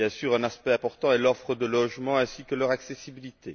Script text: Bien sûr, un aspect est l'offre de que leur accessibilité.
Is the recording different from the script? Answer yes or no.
yes